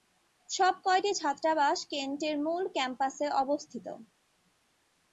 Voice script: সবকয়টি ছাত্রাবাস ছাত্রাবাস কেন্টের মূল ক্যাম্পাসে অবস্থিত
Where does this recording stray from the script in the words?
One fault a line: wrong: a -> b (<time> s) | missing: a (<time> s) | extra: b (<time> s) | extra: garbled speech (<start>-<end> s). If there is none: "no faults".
missing: ছাত্রাবাস (1.8 s)